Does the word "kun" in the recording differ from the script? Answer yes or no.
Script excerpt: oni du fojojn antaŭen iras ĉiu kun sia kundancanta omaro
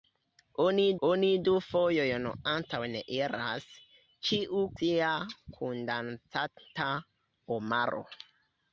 yes